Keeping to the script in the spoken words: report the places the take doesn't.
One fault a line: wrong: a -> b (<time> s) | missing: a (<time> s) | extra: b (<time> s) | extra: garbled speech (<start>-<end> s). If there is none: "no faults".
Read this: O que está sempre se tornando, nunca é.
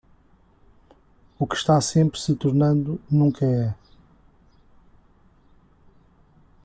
no faults